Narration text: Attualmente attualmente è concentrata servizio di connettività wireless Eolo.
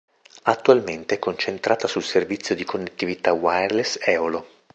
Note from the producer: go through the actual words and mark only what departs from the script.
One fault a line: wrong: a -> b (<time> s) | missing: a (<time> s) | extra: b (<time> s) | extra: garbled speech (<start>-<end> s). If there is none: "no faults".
missing: attualmente (1.1 s)
extra: sul (1.9 s)